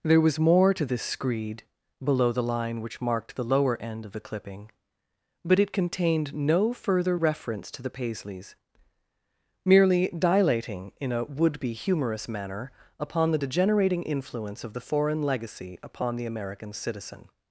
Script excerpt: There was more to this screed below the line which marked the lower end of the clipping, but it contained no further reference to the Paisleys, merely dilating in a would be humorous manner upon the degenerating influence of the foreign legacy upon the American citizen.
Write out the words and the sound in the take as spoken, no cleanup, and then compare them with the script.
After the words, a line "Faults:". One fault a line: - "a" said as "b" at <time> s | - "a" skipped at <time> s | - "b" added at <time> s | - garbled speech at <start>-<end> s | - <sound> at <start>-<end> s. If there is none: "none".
There was more to this screed below the line which marked the lower end of the clipping, but it contained no further reference to the Paisleys, merely dilating in a would be humorous manner upon the degenerating influence of the foreign legacy upon the American citizen.
Faults:
none